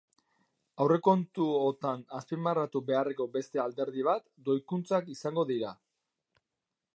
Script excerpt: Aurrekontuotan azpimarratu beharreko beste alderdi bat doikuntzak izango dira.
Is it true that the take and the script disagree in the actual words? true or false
false